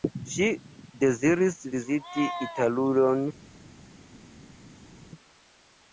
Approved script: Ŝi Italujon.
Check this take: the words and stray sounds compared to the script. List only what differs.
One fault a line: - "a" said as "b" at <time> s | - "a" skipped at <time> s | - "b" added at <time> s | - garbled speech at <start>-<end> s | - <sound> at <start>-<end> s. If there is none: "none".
- "deziris viziti" added at 1.0 s